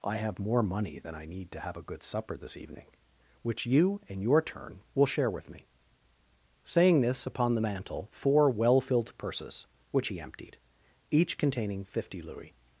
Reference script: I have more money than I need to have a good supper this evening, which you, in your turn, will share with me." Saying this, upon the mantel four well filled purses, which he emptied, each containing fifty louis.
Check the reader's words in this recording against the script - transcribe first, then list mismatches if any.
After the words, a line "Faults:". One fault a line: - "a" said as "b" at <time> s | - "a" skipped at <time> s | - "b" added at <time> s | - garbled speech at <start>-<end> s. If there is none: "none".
I have more money than I need to have a good supper this evening, which you, in your turn, will share with me." Saying this, upon the mantel four well filled purses, which he emptied, each containing fifty louis.
Faults:
none